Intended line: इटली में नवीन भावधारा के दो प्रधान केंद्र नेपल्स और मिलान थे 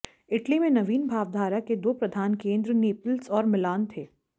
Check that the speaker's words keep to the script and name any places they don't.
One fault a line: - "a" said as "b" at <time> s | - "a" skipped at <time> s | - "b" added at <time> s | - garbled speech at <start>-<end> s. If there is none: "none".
none